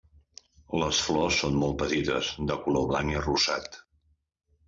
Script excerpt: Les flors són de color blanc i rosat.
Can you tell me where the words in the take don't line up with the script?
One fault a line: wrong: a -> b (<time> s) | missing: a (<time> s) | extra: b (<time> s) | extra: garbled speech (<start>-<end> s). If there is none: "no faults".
extra: molt petites (1.6 s)